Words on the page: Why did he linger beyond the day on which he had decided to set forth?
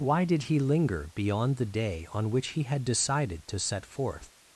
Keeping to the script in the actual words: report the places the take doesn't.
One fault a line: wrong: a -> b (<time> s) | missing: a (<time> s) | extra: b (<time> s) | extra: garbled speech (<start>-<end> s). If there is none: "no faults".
no faults